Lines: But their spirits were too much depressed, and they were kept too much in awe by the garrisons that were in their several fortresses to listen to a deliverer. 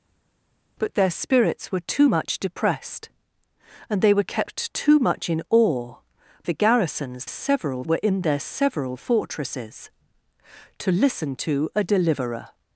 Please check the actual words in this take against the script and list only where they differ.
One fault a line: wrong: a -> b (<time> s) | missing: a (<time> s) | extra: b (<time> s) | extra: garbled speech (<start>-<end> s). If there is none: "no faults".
missing: by (6.0 s)
wrong: that -> several (7.3 s)